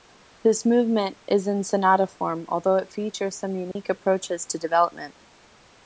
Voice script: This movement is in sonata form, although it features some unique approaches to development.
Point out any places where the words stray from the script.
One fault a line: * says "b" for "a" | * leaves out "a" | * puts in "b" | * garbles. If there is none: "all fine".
all fine